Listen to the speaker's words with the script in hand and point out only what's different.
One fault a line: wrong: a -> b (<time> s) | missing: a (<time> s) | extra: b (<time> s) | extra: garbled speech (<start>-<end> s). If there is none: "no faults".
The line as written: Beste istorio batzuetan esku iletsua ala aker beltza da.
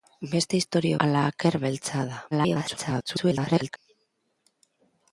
missing: batzuetan esku iletsua (1.0 s)
extra: garbled speech (2.3-3.8 s)